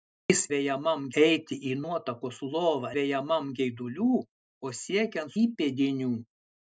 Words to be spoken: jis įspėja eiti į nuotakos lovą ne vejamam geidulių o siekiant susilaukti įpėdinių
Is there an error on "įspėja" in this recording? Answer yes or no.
yes